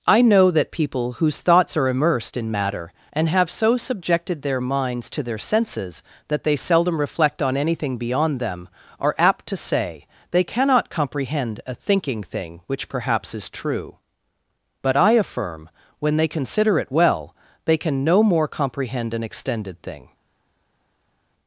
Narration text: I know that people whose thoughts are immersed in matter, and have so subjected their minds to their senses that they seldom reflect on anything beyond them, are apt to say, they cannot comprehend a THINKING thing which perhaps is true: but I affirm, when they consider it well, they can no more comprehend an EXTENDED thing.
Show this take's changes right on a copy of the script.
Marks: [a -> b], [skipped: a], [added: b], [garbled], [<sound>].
I know that people whose thoughts are immersed in matter, and have so subjected their minds to their senses that they seldom reflect on anything beyond them, are apt to say, they cannot comprehend a THINKING thing which perhaps is true: but I affirm, when they consider it well, they can no more comprehend an EXTENDED thing.